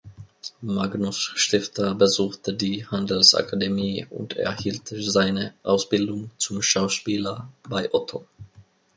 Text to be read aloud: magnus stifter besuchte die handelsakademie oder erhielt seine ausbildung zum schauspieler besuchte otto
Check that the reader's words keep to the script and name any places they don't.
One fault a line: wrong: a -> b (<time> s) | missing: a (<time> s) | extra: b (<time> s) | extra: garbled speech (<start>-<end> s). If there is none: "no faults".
wrong: oder -> und (4.1 s)
wrong: besuchte -> bei (7.7 s)